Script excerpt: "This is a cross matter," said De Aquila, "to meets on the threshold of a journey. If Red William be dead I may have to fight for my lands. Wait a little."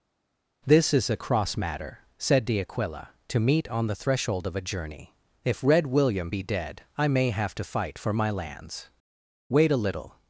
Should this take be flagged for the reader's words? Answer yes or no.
yes